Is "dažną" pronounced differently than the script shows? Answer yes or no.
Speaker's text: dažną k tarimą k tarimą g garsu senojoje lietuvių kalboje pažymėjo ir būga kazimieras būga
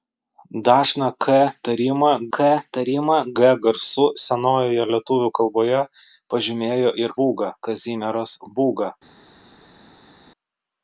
no